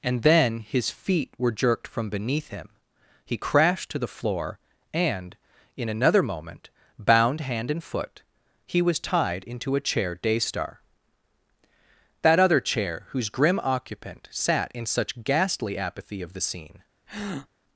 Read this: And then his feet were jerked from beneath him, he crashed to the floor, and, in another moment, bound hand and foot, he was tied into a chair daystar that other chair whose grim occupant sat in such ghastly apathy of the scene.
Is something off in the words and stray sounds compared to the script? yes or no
yes